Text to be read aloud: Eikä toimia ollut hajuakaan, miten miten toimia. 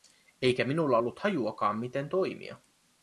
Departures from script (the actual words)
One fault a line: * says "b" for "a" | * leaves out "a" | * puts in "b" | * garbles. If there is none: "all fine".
* says "minulla" for "toimia"
* leaves out "miten"